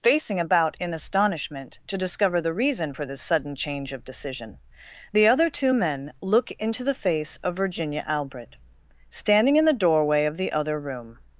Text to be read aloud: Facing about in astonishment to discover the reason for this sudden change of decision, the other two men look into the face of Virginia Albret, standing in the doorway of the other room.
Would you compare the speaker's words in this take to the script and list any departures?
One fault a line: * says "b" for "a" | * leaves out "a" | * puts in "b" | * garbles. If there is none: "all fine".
all fine